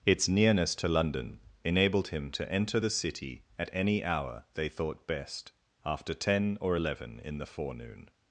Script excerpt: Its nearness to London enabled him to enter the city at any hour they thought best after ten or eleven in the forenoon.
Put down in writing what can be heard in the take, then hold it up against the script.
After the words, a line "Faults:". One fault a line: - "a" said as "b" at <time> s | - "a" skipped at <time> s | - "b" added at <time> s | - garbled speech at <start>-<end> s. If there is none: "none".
Its nearness to London enabled him to enter the city at any hour they thought best after ten or eleven in the forenoon.
Faults:
none